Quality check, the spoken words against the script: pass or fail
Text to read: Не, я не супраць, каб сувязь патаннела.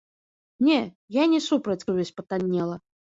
fail